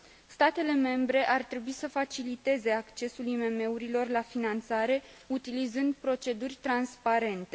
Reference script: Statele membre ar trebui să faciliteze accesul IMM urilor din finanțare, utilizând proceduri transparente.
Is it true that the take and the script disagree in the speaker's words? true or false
true